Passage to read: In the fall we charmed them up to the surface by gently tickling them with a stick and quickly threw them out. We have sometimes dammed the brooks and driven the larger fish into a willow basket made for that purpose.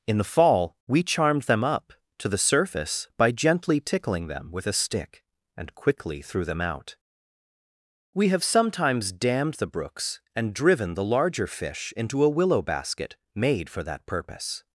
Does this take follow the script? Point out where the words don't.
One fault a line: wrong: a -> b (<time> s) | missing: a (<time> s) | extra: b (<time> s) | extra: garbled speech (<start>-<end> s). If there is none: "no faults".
no faults